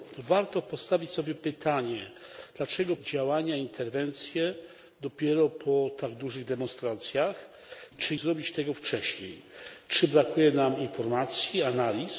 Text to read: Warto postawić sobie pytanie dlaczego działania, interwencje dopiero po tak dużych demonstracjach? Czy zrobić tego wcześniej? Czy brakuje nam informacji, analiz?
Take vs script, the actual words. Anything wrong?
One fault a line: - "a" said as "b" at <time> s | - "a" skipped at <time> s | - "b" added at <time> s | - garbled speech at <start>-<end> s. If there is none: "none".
none